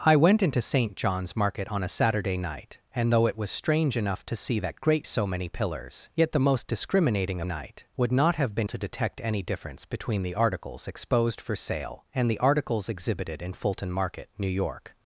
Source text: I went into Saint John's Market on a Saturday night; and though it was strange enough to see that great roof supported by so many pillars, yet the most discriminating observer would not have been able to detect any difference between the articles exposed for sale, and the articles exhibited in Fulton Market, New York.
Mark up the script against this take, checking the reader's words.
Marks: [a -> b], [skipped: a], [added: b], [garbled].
I went into Saint John's Market on a Saturday night; and though it was strange enough to see that great [skipped: roof supported by] so many pillars, yet the most discriminating [observer -> night] would not have been [skipped: able] to detect any difference between the articles exposed for sale, and the articles exhibited in Fulton Market, New York.